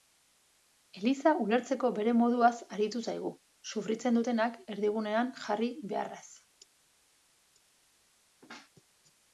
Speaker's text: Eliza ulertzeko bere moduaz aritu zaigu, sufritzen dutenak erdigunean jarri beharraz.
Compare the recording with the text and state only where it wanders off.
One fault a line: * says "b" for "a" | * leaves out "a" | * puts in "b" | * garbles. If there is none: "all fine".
all fine